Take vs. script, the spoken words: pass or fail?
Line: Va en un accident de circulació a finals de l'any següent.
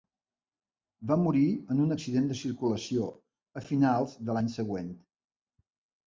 fail